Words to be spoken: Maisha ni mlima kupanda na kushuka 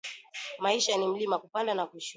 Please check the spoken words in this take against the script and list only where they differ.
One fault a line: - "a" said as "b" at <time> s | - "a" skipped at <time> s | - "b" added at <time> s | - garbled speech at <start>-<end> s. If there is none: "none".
none